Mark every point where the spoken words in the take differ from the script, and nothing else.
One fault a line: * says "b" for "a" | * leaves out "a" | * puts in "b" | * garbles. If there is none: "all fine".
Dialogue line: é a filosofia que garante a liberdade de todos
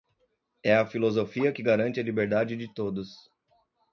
all fine